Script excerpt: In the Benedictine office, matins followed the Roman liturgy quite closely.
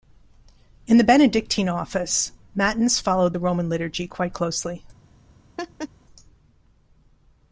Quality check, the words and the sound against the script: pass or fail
fail